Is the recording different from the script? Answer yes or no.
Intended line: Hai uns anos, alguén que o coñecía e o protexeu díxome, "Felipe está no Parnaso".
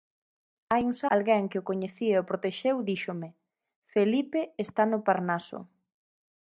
yes